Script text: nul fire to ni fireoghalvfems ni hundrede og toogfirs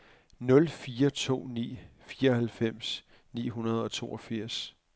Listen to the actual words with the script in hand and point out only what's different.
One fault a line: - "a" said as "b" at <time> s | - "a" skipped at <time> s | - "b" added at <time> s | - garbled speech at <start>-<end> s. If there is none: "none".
none